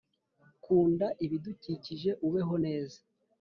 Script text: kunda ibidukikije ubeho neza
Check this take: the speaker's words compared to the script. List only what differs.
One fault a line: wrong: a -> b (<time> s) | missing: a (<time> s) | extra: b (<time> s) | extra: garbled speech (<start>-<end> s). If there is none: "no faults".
no faults